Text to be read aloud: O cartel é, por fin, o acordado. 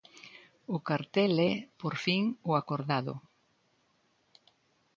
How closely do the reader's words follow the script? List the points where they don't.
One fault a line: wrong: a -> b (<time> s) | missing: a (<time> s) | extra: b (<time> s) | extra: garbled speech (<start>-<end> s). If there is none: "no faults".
no faults